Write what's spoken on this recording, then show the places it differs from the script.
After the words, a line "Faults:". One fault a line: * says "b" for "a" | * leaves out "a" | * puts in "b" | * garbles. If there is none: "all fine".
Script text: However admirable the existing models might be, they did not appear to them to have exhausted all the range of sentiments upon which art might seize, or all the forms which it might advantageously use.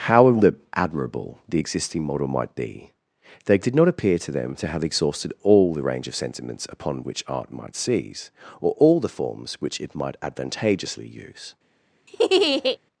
However admirable the existing model might be, they did not appear to them to have exhausted all the range of sentiments upon which art might seize, or all the forms which it might advantageously use.
Faults:
* says "model" for "models"